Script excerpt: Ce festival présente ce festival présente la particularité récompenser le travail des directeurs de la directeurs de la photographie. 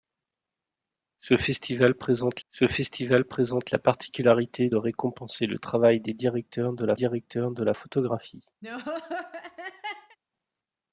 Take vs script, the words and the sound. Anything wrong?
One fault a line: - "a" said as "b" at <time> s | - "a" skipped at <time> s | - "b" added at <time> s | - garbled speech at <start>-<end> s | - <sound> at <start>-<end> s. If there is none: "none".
- laugh at 8.6-10.2 s